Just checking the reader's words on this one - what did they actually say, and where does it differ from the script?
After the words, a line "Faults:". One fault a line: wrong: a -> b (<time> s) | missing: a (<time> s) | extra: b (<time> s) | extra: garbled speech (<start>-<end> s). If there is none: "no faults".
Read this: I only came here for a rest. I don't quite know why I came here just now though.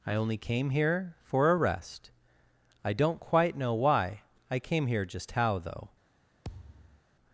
I only came here for a rest. I don't quite know why I came here just how though.
Faults:
wrong: now -> how (5.3 s)